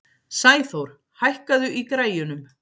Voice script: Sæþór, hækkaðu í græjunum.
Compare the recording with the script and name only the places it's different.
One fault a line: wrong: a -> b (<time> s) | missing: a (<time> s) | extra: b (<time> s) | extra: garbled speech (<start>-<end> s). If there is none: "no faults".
no faults